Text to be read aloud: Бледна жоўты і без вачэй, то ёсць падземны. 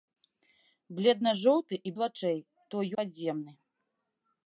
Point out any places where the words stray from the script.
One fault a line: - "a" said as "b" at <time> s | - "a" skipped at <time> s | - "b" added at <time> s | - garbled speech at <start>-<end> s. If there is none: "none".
- "без" skipped at 1.9 s
- "ёсць" skipped at 2.9 s